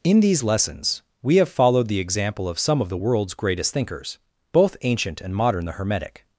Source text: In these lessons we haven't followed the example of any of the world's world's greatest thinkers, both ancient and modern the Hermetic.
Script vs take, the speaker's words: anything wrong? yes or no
yes